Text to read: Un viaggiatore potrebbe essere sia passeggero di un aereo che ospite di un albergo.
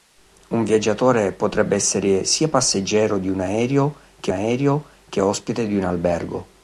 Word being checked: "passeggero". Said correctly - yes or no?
yes